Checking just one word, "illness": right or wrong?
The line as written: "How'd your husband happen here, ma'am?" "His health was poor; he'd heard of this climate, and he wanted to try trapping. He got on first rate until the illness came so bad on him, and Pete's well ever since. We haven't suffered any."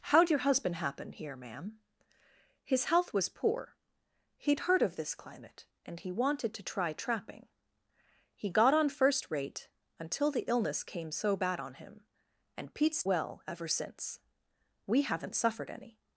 right